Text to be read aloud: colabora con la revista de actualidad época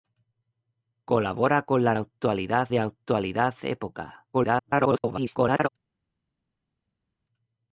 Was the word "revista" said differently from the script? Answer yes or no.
yes